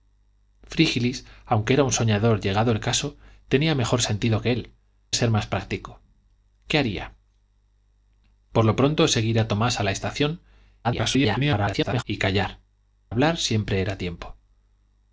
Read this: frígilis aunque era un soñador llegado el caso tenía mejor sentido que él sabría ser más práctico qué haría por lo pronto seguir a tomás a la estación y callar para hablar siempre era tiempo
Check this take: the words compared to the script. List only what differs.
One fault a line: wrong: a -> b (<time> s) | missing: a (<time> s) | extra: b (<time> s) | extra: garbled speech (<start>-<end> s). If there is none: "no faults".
missing: sabría (4.7 s)
extra: garbled speech (10.8-12.0 s)
missing: para (12.6 s)